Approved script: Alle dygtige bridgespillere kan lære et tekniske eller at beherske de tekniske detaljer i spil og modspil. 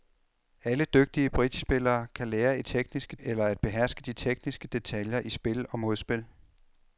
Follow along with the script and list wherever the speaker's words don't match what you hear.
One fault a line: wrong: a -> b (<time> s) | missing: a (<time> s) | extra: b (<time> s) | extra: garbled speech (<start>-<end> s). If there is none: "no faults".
no faults